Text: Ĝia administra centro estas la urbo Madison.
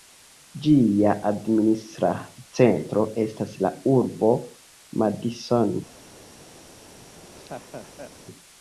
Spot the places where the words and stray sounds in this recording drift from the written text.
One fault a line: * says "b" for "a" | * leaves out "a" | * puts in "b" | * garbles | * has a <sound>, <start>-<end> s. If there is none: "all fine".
* has a laugh, 7.0-8.1 s